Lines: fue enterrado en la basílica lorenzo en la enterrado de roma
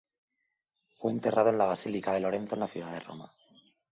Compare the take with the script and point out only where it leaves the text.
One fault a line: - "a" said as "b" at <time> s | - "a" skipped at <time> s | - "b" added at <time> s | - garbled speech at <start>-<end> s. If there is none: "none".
- "de" added at 2.1 s
- "enterrado" said as "ciudad" at 2.7 s